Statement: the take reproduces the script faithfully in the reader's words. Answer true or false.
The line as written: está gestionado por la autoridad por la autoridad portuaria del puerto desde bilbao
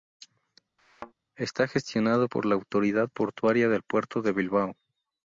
false